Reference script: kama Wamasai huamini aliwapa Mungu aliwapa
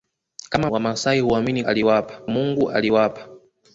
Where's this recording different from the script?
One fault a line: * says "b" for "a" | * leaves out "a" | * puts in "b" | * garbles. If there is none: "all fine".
all fine